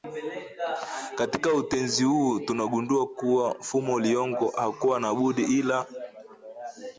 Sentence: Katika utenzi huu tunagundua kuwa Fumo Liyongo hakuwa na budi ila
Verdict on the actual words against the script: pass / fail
pass